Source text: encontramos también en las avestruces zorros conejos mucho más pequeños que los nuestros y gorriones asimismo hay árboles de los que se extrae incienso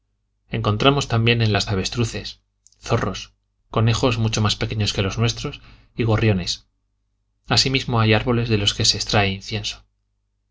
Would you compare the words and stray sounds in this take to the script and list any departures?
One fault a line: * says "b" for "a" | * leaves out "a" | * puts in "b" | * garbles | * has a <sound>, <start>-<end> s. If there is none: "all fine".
all fine